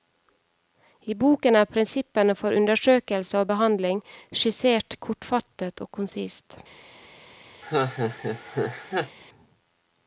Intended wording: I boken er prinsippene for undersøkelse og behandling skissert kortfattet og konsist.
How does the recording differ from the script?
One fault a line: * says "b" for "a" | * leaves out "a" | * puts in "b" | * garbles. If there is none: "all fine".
all fine